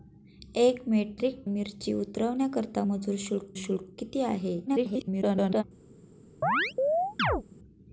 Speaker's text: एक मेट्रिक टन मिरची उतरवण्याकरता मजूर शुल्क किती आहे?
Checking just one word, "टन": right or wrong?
wrong